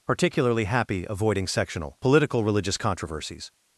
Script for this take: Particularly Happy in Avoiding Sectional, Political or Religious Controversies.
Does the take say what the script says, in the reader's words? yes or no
no